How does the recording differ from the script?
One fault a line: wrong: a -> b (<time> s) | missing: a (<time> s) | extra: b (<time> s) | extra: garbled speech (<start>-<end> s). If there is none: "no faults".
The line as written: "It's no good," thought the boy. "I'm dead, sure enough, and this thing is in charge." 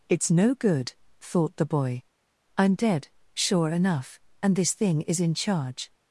no faults